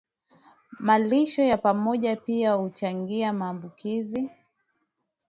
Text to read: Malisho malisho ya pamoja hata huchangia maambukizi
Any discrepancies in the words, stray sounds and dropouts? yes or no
yes